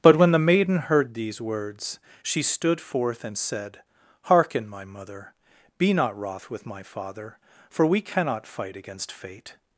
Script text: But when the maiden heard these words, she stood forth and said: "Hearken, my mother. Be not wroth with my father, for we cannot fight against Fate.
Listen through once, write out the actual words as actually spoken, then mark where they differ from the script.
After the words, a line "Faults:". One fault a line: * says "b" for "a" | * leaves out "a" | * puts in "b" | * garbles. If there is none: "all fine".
But when the maiden heard these words, she stood forth and said: "Hearken, my mother. Be not wroth with my father, for we cannot fight against Fate.
Faults:
all fine